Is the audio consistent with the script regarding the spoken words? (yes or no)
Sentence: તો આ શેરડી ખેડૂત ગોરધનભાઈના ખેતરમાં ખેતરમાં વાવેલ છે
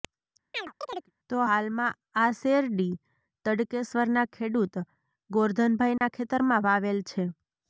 no